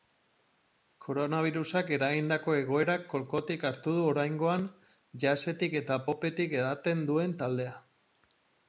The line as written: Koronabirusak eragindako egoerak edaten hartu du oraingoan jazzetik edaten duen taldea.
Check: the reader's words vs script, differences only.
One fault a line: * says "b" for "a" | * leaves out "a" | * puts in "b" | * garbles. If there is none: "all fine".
* says "kolkotik" for "edaten"
* puts in "eta popetik"